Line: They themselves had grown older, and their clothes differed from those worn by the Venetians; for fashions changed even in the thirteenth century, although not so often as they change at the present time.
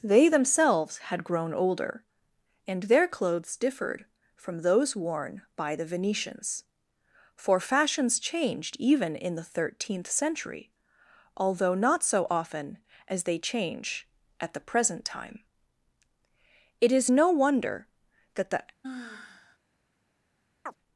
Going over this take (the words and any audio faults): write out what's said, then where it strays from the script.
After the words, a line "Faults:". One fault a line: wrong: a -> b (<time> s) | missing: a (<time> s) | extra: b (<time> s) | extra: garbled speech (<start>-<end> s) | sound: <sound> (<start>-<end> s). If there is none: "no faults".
They themselves had grown older, and their clothes differed from those worn by the Venetians; for fashions changed even in the thirteenth century, although not so often as they change at the present time. It is no wonder that the
Faults:
extra: It is no wonder that the (16.8 s)
sound: sigh (18.8-19.6 s)
sound: chirp (20.7-20.8 s)